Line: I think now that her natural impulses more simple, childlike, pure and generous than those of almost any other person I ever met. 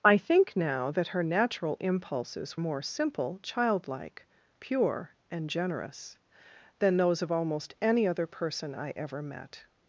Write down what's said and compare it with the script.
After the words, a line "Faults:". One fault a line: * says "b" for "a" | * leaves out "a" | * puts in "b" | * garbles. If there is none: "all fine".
I think now that her natural impulses more simple, childlike, pure and generous than those of almost any other person I ever met.
Faults:
all fine